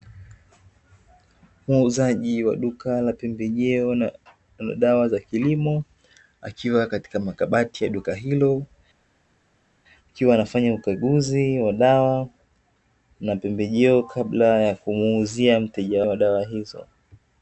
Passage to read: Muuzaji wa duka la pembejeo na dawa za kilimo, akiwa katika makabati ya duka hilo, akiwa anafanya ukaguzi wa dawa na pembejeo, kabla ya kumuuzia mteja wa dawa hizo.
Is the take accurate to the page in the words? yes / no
yes